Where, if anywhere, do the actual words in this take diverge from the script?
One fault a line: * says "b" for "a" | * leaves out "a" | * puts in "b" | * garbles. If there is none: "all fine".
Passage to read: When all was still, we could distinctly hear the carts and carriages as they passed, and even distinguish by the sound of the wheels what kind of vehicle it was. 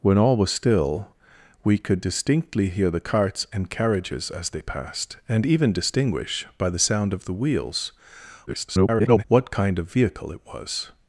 * garbles